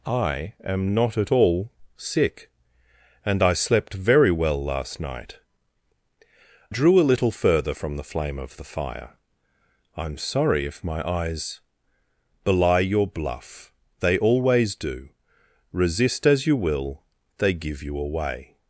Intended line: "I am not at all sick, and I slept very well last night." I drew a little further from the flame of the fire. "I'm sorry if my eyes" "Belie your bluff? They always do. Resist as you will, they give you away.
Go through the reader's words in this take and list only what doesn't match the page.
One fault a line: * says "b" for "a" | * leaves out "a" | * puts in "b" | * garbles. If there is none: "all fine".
* leaves out "I"